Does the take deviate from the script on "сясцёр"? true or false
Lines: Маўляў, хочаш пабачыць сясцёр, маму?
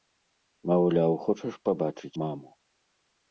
true